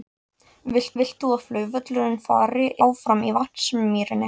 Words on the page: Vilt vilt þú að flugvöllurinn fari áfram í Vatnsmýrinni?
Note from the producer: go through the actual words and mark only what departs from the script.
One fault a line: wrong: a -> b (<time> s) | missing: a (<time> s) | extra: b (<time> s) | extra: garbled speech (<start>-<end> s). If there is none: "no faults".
no faults